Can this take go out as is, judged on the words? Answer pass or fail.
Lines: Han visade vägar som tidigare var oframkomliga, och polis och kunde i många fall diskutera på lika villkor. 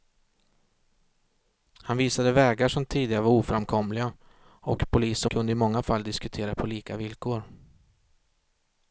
pass